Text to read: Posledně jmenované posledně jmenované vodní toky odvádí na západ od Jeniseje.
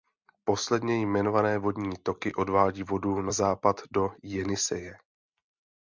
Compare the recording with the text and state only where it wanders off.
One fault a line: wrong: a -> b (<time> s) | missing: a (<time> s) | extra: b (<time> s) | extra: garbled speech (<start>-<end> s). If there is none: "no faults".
missing: posledně jmenované (1.6 s)
extra: vodu (2.8 s)
wrong: od -> do (3.9 s)